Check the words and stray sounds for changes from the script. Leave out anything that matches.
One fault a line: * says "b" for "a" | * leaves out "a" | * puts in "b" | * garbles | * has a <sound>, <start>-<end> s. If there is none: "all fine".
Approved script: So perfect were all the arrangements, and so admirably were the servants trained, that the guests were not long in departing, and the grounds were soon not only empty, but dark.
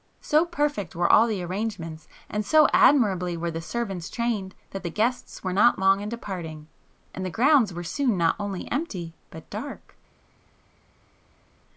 all fine